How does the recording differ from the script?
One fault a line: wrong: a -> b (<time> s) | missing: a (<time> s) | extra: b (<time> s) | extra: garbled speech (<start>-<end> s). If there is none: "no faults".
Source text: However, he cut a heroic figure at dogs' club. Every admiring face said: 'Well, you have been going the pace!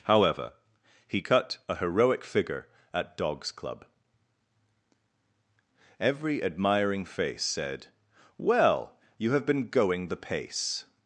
no faults